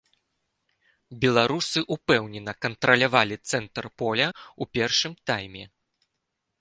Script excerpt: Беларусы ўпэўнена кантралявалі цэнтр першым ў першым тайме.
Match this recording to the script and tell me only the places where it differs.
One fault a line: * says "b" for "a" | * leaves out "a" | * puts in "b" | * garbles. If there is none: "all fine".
* says "поля" for "першым"